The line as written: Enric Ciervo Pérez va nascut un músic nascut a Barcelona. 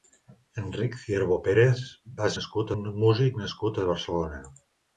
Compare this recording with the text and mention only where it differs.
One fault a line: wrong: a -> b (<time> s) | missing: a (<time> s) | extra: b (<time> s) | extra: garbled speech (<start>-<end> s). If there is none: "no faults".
no faults